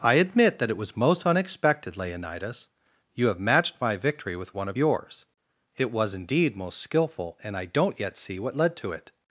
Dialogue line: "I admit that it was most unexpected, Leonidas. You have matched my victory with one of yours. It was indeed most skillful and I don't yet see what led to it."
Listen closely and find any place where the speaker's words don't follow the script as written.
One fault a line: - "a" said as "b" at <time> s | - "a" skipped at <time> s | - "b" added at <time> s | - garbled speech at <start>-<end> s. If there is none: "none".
none